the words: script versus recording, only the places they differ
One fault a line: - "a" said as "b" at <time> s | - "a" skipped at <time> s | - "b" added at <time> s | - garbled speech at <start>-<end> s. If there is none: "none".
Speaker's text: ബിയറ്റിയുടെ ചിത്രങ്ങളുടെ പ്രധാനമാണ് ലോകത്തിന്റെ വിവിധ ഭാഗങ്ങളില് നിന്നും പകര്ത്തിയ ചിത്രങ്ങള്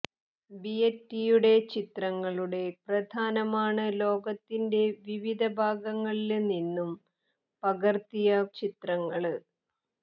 none